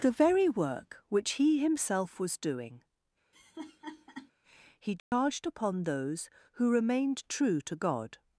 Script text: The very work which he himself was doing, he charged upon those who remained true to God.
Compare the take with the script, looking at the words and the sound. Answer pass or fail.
fail